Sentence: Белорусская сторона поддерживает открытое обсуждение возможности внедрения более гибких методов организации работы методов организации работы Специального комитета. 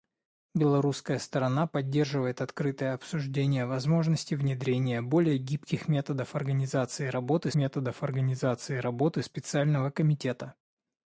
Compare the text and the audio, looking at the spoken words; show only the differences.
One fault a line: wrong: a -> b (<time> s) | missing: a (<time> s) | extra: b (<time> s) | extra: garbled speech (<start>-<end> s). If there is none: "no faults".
no faults